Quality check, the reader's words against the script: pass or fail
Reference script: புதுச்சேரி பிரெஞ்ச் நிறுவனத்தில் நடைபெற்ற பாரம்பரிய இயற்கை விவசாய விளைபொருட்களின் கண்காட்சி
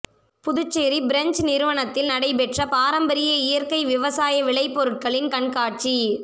pass